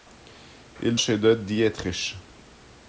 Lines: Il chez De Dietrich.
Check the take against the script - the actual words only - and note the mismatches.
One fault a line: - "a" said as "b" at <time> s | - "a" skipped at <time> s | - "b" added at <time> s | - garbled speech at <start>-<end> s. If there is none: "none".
none